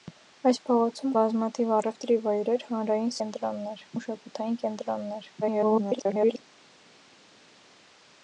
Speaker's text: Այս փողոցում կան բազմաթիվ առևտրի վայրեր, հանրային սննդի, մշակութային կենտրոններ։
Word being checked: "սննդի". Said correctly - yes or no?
no